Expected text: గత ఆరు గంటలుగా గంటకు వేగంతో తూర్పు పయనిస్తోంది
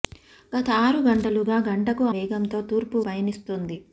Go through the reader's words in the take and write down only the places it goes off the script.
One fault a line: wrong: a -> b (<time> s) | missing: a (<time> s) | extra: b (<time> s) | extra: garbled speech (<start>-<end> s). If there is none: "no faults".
no faults